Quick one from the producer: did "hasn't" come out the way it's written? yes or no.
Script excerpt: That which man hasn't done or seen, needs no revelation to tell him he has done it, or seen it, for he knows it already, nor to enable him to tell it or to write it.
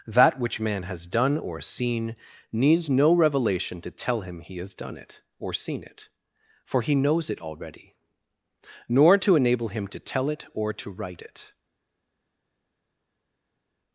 no